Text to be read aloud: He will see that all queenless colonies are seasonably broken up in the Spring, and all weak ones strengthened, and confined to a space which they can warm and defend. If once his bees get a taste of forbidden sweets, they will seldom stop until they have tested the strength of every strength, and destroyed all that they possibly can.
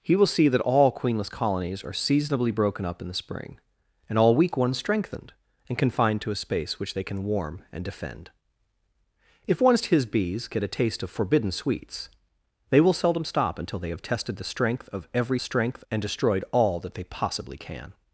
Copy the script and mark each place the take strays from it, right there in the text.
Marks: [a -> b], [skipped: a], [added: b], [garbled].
He will see that all queenless colonies are seasonably broken up in the Spring, and all weak ones strengthened, and confined to a space which they can warm and defend. If once his bees get a taste of forbidden sweets, they will seldom stop until they have tested the strength of every strength, and destroyed all that they possibly can.